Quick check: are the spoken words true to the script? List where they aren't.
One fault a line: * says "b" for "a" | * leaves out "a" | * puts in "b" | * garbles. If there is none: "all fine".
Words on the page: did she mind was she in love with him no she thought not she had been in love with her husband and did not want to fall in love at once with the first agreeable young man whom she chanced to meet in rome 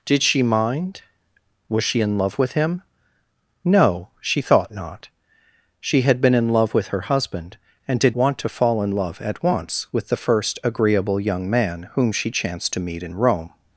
* leaves out "not"